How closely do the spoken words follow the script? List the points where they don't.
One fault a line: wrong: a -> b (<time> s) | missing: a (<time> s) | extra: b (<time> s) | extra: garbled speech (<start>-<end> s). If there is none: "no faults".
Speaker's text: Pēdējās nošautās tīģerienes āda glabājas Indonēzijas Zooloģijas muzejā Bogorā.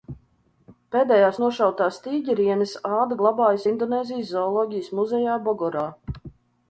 no faults